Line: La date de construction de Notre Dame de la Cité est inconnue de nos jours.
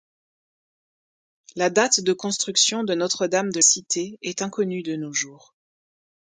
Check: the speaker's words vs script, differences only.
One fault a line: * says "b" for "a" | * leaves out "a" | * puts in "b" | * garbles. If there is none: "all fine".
* leaves out "la"